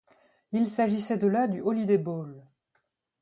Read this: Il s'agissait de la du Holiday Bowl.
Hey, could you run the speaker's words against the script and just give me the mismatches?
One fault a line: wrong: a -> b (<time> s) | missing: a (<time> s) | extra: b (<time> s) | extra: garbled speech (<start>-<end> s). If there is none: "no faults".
no faults